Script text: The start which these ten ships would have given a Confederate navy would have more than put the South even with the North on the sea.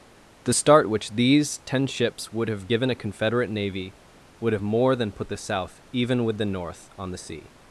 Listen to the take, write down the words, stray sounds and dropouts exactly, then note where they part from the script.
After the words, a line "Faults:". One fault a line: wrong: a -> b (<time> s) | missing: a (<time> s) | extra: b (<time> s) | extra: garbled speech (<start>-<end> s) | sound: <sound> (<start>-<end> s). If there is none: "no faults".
The start which these ten ships would have given a Confederate navy would have more than put the South even with the North on the sea.
Faults:
no faults